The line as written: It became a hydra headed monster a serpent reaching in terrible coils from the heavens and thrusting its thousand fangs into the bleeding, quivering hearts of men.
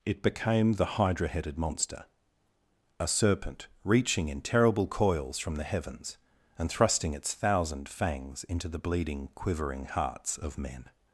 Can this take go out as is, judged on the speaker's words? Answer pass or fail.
fail